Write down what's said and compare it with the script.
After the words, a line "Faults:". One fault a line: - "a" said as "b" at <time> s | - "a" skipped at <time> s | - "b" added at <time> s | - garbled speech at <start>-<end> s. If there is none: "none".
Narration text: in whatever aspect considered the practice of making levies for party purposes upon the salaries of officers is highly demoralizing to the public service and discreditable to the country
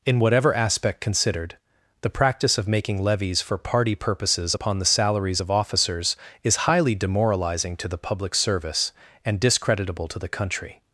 in whatever aspect considered the practice of making levies for party purposes upon the salaries of officers is highly demoralizing to the public service and discreditable to the country
Faults:
none